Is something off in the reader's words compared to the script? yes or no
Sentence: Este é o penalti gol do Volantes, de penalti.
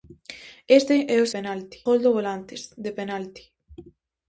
no